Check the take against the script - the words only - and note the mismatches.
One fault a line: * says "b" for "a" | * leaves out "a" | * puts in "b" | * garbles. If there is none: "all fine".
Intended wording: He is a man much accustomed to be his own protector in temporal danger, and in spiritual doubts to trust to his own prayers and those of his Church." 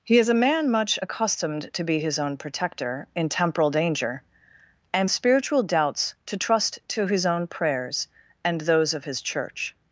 * leaves out "in"